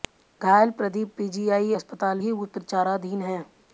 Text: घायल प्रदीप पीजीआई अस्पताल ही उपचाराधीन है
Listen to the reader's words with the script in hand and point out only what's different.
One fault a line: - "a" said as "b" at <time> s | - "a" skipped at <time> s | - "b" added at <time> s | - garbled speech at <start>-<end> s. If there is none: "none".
none